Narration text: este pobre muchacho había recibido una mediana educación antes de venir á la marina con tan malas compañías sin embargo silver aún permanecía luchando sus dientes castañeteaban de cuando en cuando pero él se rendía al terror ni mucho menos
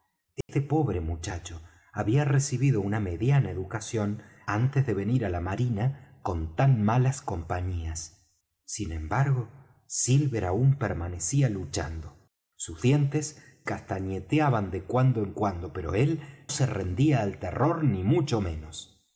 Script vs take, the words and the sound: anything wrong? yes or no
yes